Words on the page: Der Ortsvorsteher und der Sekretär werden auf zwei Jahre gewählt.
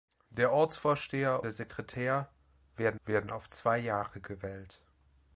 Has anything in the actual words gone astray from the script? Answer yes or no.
yes